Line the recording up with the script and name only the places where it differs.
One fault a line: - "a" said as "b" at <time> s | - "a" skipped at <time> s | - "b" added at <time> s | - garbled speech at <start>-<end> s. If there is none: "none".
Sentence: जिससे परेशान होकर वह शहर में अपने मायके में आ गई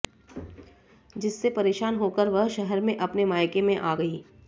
none